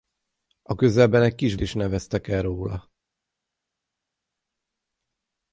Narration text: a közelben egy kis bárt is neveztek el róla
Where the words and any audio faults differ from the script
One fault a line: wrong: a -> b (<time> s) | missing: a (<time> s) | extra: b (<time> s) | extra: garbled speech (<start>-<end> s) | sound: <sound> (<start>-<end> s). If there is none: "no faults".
missing: bárt (1.6 s)